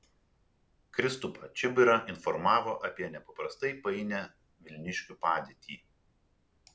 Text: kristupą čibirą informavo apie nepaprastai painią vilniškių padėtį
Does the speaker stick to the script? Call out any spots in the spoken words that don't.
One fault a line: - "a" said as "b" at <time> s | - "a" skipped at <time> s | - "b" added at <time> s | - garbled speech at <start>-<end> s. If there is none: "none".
none